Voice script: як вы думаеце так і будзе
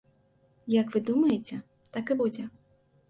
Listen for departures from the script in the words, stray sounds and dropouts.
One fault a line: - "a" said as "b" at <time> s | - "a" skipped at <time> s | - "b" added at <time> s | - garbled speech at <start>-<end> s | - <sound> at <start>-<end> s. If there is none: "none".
none